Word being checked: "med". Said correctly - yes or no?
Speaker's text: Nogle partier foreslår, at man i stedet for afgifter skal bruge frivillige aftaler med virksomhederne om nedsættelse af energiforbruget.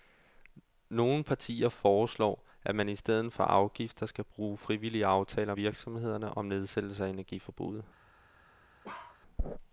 no